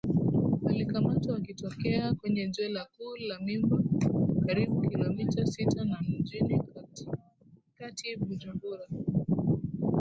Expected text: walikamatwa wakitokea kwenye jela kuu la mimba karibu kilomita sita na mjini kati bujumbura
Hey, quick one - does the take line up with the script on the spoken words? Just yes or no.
yes